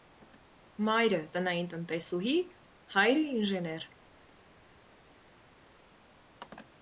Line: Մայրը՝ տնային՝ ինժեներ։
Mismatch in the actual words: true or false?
true